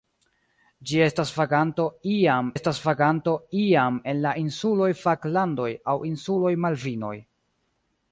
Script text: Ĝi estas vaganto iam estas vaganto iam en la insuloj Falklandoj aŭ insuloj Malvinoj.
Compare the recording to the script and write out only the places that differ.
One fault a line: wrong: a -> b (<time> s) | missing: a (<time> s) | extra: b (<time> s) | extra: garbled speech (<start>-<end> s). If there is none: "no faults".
no faults